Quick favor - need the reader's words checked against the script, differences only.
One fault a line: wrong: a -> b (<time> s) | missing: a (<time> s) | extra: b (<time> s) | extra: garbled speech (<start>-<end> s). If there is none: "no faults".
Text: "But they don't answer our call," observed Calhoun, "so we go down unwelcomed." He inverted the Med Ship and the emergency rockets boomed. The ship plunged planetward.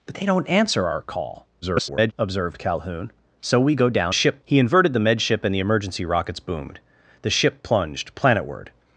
extra: garbled speech (1.6-2.1 s)
wrong: unwelcomed -> ship (4.1 s)